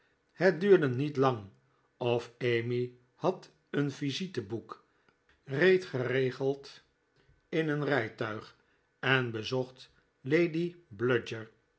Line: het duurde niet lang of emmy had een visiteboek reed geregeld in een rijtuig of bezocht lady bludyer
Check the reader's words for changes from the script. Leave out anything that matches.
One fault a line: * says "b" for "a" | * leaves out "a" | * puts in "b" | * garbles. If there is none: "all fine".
* says "en" for "of"